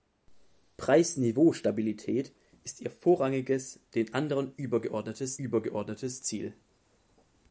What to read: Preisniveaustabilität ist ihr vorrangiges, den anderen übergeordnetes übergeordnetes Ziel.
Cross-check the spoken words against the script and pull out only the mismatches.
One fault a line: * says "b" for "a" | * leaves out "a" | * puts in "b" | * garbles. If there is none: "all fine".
all fine